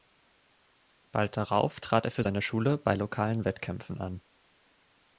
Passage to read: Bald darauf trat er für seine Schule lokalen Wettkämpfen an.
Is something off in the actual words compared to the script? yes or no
yes